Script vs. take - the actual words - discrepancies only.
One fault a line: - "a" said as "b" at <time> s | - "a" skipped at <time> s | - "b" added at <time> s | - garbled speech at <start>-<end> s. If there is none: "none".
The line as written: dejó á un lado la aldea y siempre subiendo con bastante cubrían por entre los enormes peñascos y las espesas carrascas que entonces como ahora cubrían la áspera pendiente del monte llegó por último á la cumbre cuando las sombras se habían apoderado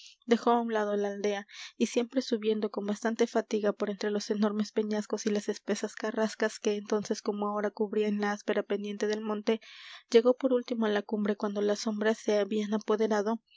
- "cubrían" said as "fatiga" at 3.3 s